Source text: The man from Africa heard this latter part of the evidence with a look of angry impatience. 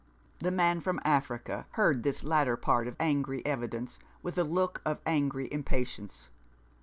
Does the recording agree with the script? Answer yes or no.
no